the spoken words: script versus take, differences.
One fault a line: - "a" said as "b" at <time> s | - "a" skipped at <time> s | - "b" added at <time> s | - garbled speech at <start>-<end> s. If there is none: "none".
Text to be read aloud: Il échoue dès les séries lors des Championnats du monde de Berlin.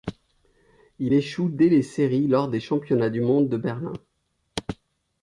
none